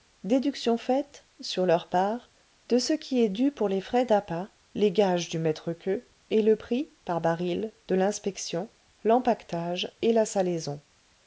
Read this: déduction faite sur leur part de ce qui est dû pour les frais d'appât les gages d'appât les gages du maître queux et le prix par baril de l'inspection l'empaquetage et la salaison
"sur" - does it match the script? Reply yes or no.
yes